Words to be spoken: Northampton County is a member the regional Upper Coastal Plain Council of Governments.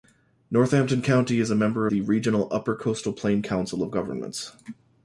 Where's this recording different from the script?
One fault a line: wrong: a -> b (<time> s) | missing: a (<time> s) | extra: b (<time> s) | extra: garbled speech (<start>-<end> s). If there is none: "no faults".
no faults